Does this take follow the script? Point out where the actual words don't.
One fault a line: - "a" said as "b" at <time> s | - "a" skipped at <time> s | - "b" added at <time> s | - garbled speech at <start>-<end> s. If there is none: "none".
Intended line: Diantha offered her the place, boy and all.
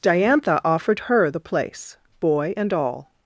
none